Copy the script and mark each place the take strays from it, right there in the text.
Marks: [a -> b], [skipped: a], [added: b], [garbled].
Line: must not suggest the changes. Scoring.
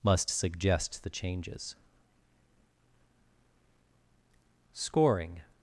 must [skipped: not] suggest the changes. Scoring.